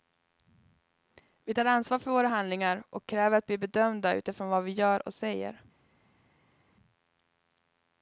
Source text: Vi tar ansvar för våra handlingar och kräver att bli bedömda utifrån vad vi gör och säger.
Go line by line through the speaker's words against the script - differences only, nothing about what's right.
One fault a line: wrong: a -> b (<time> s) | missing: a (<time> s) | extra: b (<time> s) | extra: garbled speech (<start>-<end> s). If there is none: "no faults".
no faults